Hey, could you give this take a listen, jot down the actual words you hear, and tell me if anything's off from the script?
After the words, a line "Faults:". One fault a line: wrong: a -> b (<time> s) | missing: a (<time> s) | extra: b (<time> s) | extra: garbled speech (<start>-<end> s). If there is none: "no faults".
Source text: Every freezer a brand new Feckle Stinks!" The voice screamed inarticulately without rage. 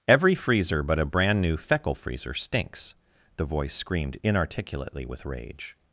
Every freezer but a brand new Feckle Freezer stinks!" The voice screamed inarticulately with rage.
Faults:
extra: but (0.8 s)
extra: Freezer (1.9 s)
wrong: without -> with (5.0 s)